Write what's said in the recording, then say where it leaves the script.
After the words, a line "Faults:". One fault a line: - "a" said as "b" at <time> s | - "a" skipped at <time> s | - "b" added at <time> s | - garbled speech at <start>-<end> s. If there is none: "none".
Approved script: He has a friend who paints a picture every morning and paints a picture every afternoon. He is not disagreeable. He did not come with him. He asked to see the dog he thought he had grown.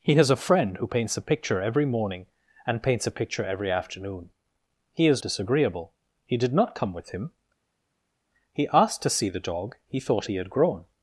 He has a friend who paints a picture every morning and paints a picture every afternoon. He is disagreeable. He did not come with him. He asked to see the dog he thought he had grown.
Faults:
- "not" skipped at 5.2 s